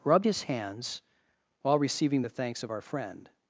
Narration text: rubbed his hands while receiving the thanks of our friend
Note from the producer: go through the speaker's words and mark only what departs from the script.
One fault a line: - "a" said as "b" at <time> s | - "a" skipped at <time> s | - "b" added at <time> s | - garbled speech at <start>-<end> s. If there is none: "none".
none